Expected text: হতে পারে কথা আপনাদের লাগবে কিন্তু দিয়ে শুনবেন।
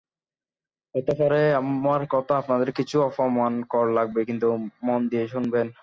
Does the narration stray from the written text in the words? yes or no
yes